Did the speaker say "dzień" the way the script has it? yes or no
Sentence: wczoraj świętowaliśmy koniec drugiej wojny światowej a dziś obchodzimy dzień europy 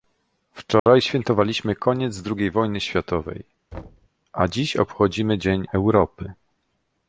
yes